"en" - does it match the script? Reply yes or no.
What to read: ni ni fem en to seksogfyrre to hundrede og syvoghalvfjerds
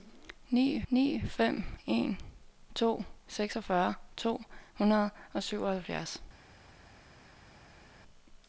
yes